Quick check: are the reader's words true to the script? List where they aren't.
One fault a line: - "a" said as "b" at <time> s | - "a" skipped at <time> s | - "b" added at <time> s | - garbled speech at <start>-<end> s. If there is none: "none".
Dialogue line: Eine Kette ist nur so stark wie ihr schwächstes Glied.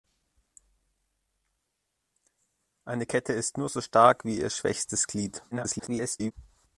- garbled speech at 5.5-6.3 s